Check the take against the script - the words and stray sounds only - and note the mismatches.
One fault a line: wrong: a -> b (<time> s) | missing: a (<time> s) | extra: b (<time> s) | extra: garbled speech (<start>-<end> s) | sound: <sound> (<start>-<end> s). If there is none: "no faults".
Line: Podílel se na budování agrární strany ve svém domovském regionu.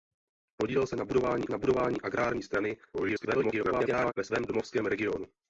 extra: na budování (1.5 s)
extra: garbled speech (2.9-4.1 s)